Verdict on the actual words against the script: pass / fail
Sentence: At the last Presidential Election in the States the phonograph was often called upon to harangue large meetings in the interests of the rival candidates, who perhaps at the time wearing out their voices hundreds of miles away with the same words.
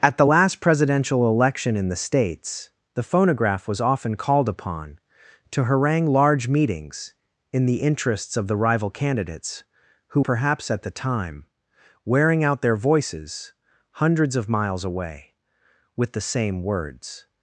pass